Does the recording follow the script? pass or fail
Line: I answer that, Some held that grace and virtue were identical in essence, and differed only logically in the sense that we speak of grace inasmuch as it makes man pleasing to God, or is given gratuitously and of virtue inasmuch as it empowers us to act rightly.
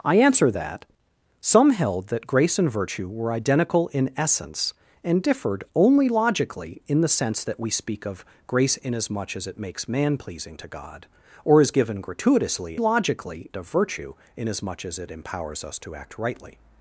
fail